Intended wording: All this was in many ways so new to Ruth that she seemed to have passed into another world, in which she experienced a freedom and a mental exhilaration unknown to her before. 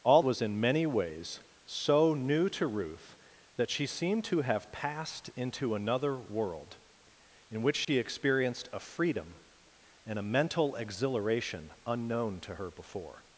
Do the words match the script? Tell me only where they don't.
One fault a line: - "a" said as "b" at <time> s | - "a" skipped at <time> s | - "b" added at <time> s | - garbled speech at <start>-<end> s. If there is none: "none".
- "this" skipped at 0.2 s